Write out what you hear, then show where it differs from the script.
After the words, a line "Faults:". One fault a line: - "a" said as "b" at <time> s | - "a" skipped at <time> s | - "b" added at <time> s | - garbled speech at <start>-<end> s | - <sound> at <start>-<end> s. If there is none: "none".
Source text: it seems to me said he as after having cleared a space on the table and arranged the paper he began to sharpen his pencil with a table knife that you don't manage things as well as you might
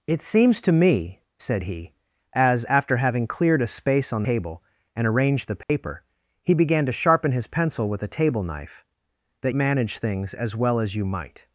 it seems to me said he as after having cleared a space on table and arranged the paper he began to sharpen his pencil with a table knife that manage things as well as you might
Faults:
- "the" skipped at 4.2 s
- dropout at 5.6-5.7 s
- "you don't" skipped at 9.5 s